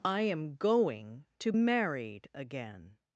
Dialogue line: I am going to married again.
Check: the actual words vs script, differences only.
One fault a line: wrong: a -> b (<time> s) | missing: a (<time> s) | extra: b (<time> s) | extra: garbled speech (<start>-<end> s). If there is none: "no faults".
no faults